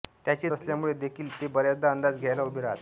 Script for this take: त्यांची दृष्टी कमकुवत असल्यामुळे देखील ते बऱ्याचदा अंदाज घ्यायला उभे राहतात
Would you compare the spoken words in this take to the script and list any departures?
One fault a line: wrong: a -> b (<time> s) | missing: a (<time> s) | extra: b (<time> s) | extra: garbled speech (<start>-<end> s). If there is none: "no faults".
missing: दृष्टी कमकुवत (0.5 s)